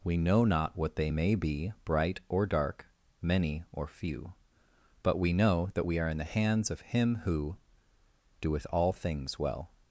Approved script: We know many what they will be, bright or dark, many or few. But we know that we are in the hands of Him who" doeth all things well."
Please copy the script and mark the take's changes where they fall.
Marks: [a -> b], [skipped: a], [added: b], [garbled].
We know [many -> not] what they [will -> may] be, bright or dark, many or few. But we know that we are in the hands of Him who" doeth all things well."